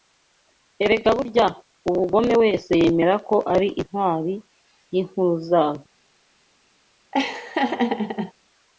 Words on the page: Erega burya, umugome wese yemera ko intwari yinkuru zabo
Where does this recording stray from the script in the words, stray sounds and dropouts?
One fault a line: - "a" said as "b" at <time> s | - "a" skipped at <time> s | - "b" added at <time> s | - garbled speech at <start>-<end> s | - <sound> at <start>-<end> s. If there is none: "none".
- "ari" added at 3.5 s
- laugh at 7.1-8.3 s